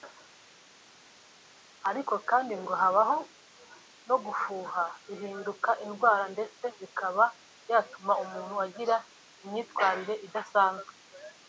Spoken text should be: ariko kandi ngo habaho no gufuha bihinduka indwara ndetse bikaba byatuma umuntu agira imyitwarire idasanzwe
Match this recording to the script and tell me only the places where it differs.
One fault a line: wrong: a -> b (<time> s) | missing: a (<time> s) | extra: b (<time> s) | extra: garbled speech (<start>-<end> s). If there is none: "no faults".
no faults